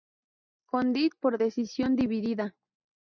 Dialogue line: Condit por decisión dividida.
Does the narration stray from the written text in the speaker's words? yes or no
no